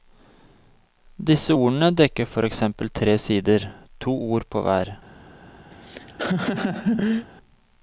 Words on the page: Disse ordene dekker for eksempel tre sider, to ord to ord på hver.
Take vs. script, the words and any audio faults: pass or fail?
fail